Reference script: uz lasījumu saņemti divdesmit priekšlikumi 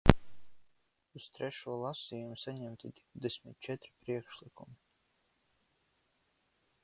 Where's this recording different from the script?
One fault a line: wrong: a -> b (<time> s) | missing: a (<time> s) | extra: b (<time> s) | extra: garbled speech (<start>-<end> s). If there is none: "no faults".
extra: trešo (1.3 s)
extra: četri (3.7 s)